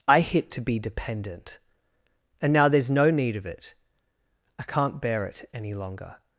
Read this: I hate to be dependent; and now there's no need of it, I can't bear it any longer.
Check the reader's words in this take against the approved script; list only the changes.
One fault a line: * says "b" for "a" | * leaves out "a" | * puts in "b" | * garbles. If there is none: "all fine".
* says "hit" for "hate"